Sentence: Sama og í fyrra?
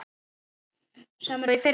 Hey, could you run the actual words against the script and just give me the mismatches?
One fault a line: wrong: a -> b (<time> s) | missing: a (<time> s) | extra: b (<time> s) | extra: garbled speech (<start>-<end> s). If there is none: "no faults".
no faults